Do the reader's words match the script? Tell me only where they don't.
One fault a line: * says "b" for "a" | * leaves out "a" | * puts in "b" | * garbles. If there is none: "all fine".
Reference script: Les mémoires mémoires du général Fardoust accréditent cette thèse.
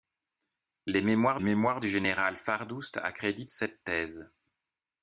all fine